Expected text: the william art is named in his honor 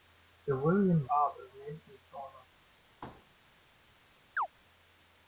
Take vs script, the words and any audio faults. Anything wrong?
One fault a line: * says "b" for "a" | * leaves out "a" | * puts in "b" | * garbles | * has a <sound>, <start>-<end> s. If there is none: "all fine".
* has a thud, 3.0-3.3 s
* has a chirp, 4.4-4.5 s